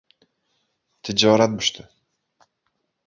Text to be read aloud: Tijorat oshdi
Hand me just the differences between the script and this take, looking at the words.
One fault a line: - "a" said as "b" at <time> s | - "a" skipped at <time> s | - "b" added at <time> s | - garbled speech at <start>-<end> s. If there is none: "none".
none